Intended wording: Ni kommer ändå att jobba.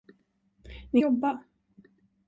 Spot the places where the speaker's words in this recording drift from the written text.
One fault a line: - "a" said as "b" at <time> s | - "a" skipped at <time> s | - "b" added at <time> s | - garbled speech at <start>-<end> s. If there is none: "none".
- "kommer ändå att" skipped at 1.0 s